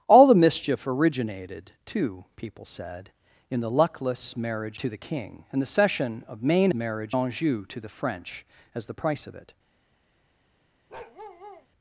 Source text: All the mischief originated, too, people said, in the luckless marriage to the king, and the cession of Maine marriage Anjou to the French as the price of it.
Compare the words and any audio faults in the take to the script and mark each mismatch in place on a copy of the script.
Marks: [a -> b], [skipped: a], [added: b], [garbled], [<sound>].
All the mischief originated, too, people said, in the luckless marriage to the king, and the cession of Maine marriage Anjou to the French as the price of it. [bark]